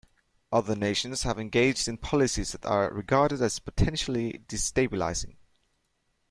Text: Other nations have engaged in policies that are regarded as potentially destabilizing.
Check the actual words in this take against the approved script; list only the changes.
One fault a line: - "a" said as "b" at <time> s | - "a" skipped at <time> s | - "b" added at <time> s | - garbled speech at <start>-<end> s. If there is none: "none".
none